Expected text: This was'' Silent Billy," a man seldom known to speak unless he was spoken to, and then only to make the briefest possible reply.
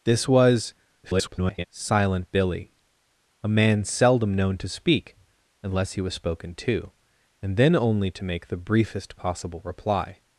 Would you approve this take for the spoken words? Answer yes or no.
no